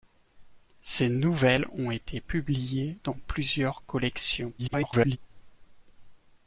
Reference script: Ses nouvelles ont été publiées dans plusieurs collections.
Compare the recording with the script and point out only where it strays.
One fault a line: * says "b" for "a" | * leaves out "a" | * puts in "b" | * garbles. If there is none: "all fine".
* garbles